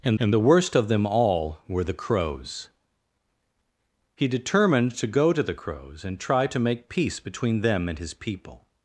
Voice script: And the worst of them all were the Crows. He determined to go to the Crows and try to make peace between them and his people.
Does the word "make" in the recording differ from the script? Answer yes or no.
no